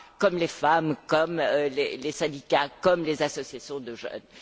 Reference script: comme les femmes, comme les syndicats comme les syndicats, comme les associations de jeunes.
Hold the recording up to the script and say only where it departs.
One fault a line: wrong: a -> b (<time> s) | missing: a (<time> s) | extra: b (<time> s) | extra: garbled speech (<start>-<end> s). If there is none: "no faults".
missing: syndicats comme les (3.2 s)